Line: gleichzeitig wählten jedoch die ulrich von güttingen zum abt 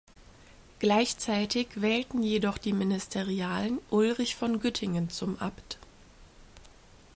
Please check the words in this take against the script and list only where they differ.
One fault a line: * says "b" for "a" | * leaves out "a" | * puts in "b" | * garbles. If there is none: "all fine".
* puts in "ministerialen"